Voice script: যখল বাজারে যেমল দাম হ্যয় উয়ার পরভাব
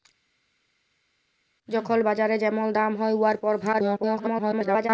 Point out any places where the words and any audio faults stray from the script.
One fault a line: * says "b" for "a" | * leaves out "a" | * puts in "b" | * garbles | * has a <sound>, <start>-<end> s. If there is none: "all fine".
* garbles